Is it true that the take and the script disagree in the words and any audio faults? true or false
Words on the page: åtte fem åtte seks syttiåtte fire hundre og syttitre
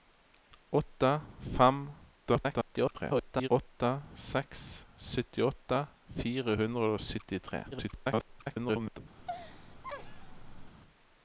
true